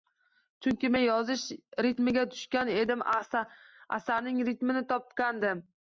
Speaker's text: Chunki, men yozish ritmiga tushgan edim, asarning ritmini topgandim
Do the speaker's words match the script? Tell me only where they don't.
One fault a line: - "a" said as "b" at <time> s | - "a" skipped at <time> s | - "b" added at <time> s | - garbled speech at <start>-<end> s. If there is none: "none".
none